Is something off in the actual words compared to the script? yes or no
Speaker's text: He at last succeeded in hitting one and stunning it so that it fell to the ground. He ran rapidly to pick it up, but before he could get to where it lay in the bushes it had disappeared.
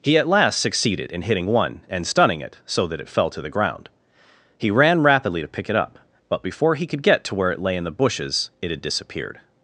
no